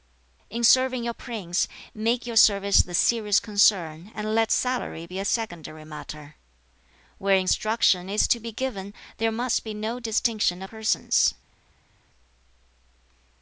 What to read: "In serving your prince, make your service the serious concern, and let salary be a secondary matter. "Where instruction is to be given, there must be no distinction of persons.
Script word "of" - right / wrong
wrong